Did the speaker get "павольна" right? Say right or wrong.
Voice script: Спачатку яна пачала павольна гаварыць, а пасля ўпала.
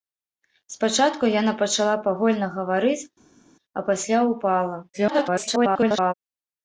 right